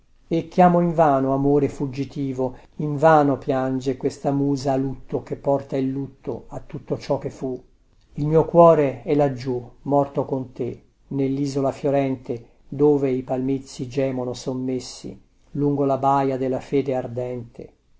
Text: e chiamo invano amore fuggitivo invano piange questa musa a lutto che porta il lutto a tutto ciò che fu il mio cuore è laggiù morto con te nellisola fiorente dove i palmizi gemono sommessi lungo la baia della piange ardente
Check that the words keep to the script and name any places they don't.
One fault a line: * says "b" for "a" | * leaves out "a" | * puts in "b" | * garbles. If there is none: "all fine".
* says "fede" for "piange"